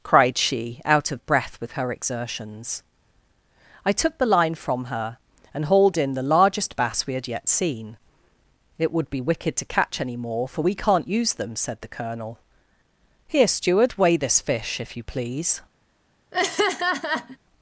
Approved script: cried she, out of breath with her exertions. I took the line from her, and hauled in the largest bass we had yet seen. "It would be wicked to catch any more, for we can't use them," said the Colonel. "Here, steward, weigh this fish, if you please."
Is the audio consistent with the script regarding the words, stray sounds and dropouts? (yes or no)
no